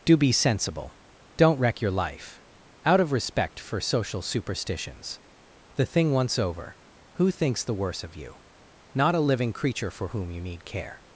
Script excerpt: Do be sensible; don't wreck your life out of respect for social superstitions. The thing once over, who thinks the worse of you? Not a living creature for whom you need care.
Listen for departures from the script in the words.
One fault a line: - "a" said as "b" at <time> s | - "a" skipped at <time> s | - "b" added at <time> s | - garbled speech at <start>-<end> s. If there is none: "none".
none